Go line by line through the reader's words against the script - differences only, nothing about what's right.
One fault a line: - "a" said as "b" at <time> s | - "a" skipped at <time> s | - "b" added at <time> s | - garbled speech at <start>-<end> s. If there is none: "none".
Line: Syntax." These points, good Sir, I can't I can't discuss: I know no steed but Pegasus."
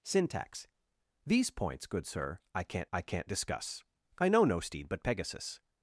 none